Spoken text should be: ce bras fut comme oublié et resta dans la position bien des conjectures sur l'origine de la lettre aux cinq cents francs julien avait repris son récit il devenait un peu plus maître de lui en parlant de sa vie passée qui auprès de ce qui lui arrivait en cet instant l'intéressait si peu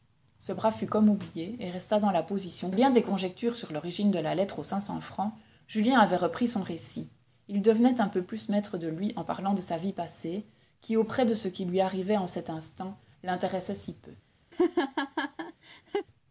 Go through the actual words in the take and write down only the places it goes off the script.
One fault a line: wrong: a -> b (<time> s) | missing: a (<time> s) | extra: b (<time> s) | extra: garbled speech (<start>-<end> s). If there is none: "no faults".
no faults